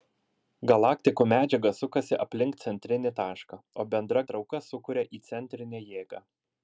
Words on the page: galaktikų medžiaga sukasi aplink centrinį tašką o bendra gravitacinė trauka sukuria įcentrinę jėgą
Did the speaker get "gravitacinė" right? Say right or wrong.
wrong